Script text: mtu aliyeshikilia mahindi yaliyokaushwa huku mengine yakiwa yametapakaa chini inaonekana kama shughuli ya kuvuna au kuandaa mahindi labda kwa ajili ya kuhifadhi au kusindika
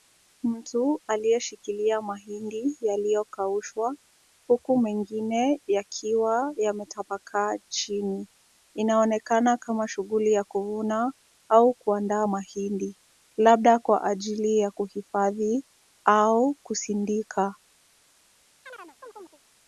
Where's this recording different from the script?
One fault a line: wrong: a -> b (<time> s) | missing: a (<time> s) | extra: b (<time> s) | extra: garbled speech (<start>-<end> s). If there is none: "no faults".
no faults